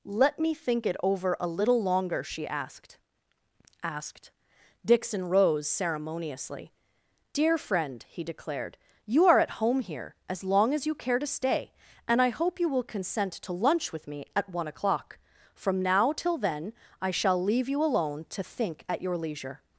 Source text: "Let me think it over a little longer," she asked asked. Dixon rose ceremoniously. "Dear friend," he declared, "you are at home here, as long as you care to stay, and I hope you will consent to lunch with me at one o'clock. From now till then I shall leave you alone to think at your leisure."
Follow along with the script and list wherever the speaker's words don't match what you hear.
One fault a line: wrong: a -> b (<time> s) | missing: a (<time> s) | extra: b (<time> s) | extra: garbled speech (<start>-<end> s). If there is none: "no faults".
no faults